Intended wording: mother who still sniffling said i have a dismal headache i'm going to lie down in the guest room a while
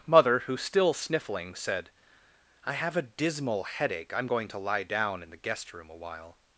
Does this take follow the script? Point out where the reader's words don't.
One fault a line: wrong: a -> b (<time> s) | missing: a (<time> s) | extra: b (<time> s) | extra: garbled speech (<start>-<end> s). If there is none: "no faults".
no faults